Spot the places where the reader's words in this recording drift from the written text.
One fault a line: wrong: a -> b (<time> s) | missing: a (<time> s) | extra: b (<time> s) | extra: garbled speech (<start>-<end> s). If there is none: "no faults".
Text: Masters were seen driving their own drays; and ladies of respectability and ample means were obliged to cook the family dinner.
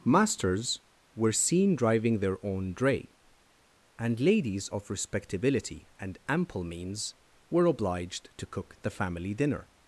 wrong: drays -> dray (2.7 s)